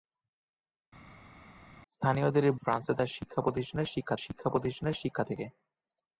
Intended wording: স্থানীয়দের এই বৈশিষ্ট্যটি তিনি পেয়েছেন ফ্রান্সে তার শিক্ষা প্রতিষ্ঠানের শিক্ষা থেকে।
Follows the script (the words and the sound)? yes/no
no